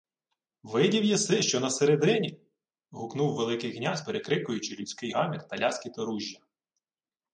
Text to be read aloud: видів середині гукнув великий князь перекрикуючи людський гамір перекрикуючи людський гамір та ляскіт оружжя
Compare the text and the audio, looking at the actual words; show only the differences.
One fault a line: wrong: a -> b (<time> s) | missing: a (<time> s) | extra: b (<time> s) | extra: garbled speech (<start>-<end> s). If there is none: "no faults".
extra: єси що на (1.0 s)
missing: перекрикуючи людський гамір (5.5 s)